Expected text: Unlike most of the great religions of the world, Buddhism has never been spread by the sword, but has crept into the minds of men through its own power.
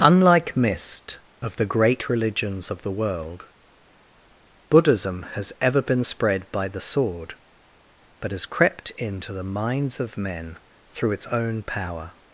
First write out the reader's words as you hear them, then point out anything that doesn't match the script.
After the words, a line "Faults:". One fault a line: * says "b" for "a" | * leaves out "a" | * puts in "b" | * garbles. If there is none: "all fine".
Unlike mist of the great religions of the world, Buddhism has ever been spread by the sword, but has crept into the minds of men through its own power.
Faults:
* says "mist" for "most"
* says "ever" for "never"